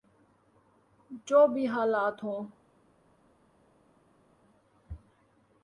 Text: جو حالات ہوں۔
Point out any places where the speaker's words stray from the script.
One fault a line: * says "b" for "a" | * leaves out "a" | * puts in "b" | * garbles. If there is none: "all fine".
* puts in "بھی"